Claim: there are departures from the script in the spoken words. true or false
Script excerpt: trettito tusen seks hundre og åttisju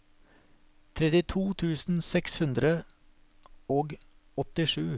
false